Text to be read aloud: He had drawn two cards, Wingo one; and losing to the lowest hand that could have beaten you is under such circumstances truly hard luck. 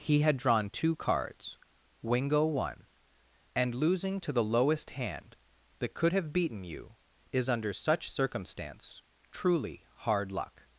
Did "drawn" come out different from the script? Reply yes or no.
no